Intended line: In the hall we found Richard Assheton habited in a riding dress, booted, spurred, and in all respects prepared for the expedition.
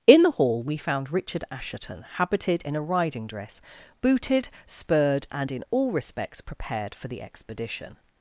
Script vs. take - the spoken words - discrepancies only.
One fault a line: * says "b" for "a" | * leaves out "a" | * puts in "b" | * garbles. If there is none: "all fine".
all fine